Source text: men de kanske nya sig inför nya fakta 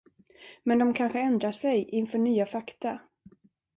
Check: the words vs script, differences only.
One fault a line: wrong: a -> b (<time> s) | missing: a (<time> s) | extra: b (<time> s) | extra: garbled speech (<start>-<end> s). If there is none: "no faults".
wrong: nya -> ändrar (1.2 s)